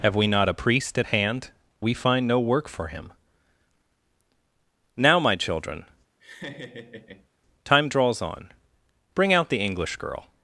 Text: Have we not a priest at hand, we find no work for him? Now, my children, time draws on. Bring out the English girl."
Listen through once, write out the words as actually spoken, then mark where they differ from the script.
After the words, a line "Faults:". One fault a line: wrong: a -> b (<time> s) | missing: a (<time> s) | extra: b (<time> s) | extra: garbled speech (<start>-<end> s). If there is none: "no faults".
Have we not a priest at hand, we find no work for him? Now, my children, time draws on. Bring out the English girl."
Faults:
no faults